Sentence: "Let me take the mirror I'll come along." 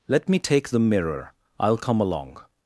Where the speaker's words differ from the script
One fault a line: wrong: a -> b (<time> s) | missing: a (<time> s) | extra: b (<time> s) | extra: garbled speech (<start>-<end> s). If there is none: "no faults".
no faults